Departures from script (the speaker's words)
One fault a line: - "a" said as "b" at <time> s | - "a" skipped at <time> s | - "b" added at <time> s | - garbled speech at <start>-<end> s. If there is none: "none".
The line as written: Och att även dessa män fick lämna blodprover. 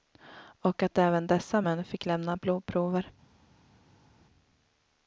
none